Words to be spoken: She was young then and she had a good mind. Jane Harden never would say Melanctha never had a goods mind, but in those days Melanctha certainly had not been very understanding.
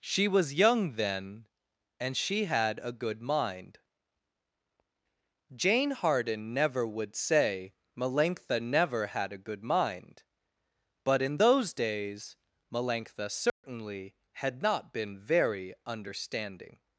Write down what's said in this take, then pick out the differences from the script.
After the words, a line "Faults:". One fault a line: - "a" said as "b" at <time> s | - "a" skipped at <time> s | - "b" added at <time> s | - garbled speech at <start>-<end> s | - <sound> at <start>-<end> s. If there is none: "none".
She was young then and she had a good mind. Jane Harden never would say Melanctha never had a good mind, but in those days Melanctha certainly had not been very understanding.
Faults:
- "goods" said as "good" at 9.4 s
- dropout at 13.5-13.6 s